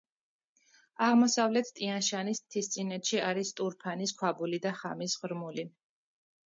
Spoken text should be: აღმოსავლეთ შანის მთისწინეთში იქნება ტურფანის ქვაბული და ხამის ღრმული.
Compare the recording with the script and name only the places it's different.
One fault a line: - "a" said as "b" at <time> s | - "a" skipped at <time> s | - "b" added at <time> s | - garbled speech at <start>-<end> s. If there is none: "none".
- "ტიან" added at 1.8 s
- "იქნება" said as "არის" at 3.3 s